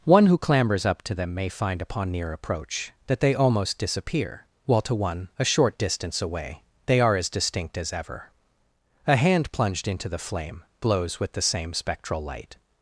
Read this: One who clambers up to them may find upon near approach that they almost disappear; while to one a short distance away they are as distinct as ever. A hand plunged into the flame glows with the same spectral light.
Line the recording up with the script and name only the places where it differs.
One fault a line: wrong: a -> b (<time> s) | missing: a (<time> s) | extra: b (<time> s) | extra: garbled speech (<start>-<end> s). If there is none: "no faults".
wrong: glows -> blows (10.8 s)